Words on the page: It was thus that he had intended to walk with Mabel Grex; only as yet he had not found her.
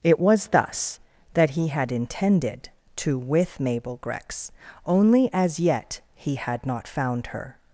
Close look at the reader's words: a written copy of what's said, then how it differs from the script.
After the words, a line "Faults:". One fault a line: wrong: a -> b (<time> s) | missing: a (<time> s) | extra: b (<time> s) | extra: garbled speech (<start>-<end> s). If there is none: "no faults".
It was thus that he had intended to with Mabel Grex; only as yet he had not found her.
Faults:
missing: walk (3.2 s)